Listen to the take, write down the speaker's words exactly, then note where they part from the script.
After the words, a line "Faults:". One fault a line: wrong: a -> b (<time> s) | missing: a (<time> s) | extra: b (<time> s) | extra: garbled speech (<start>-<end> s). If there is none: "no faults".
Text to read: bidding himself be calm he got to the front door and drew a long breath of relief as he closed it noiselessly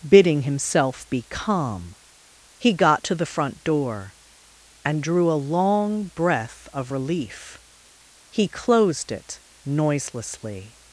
bidding himself be calm he got to the front door and drew a long breath of relief he closed it noiselessly
Faults:
missing: as (7.6 s)